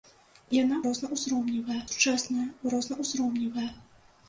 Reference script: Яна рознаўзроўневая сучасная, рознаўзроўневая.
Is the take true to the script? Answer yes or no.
yes